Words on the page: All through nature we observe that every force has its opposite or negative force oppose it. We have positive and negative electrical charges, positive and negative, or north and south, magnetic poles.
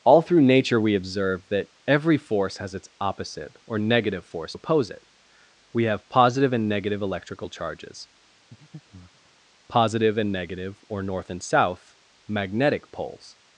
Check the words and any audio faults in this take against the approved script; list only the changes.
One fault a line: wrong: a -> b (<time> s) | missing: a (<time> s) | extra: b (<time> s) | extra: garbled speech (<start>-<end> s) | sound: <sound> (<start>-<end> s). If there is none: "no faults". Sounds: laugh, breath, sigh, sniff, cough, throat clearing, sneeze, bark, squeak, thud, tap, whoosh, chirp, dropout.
sound: breath (8.5-9.3 s)